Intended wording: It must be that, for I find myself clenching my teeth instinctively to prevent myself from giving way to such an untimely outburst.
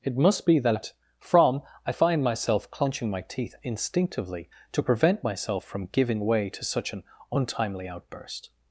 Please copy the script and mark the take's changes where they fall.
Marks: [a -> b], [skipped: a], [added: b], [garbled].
It must be that, [for -> from] I find myself clenching my teeth instinctively to prevent myself from giving way to such an untimely outburst.